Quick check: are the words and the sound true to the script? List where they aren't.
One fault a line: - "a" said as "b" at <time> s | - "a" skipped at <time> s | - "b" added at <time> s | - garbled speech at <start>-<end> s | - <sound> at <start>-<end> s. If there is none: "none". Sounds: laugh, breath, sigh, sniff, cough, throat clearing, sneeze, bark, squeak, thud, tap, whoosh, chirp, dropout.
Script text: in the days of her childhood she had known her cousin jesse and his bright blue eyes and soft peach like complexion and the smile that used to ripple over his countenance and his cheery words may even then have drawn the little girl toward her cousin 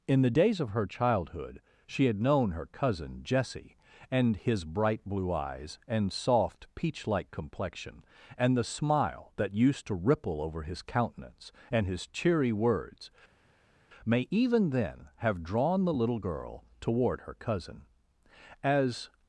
- "as" added at 18.6 s